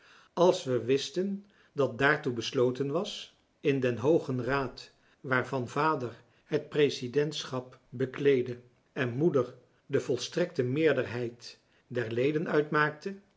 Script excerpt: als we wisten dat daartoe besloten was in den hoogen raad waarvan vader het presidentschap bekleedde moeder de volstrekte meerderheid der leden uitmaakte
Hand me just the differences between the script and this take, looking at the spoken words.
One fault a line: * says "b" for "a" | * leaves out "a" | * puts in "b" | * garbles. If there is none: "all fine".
* puts in "en"